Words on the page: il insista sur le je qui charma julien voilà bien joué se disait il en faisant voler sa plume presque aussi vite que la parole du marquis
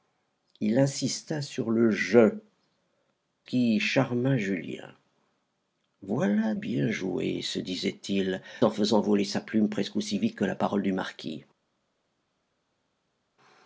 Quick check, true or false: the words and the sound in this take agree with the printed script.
true